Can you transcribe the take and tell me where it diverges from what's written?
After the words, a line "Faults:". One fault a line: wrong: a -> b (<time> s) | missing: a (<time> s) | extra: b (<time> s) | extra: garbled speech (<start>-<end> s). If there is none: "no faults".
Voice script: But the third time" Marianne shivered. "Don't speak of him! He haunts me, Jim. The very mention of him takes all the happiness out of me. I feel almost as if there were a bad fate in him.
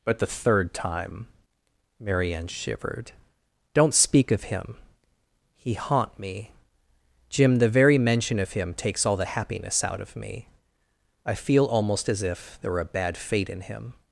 But the third time" Marianne shivered. "Don't speak of him! He haunt me, Jim. The very mention of him takes all the happiness out of me. I feel almost as if there were a bad fate in him.
Faults:
wrong: haunts -> haunt (5.8 s)